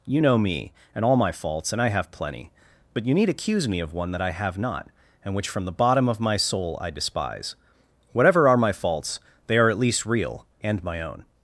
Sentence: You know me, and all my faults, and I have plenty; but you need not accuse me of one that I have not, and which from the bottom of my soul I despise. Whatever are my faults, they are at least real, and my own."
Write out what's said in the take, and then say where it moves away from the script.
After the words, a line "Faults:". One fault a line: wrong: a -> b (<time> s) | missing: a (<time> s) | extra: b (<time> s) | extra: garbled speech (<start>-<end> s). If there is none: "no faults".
You know me, and all my faults, and I have plenty; but you need accuse me of one that I have not, and which from the bottom of my soul I despise. Whatever are my faults, they are at least real, and my own."
Faults:
missing: not (3.3 s)